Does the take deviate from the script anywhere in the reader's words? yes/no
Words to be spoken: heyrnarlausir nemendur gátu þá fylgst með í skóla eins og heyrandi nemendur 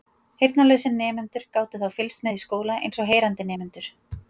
no